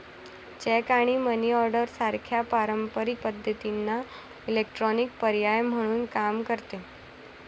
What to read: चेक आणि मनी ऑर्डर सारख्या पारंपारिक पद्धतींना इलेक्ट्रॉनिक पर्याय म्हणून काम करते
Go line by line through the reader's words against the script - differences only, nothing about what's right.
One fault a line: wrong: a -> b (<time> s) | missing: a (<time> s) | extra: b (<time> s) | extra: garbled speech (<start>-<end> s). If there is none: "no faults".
no faults